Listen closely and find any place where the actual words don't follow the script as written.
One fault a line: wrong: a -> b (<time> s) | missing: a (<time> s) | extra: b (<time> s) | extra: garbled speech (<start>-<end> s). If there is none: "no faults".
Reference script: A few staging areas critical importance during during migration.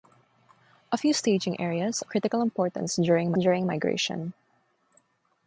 no faults